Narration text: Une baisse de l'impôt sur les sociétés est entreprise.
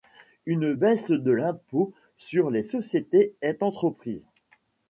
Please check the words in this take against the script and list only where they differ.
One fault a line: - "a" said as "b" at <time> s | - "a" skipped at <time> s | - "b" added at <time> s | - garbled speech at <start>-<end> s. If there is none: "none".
none